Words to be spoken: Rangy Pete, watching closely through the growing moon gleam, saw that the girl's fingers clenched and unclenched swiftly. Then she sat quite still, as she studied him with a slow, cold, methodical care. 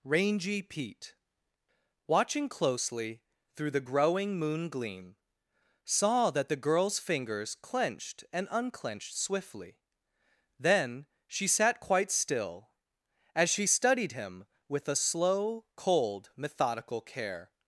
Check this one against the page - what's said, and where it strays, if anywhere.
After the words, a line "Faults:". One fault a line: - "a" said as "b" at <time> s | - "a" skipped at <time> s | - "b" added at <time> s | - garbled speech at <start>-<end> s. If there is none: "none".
Rangy Pete, watching closely through the growing moon gleam, saw that the girl's fingers clenched and unclenched swiftly. Then she sat quite still, as she studied him with a slow, cold, methodical care.
Faults:
none